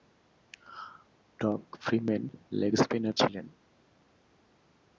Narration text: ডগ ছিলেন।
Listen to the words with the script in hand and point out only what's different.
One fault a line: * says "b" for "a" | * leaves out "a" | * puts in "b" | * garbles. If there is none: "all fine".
* puts in "ফ্রিম্যান লেগ স্পিনার"